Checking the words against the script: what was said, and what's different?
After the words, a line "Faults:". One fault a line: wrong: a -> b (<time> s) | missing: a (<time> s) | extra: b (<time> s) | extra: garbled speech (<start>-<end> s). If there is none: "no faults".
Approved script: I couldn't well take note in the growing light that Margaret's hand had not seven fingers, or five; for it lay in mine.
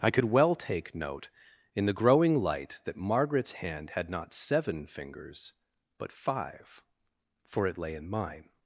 I could well take note in the growing light that Margaret's hand had not seven fingers, but five; for it lay in mine.
Faults:
wrong: couldn't -> could (0.1 s)
wrong: or -> but (6.0 s)